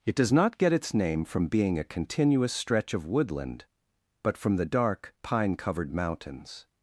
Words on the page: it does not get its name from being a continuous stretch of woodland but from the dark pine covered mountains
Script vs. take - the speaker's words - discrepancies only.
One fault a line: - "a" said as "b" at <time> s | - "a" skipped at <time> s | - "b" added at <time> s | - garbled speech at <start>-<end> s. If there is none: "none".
none